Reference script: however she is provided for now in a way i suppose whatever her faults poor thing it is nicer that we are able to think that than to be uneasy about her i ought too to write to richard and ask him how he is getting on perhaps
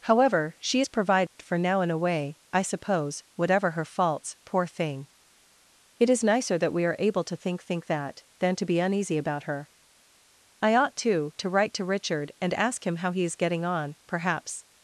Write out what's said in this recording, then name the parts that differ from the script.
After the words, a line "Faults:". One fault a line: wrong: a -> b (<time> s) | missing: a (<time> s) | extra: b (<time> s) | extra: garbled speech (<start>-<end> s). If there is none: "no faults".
however she is provided for now in a way i suppose whatever her faults poor thing it is nicer that we are able to think think that than to be uneasy about her i ought too to write to richard and ask him how he is getting on perhaps
Faults:
extra: think (7.6 s)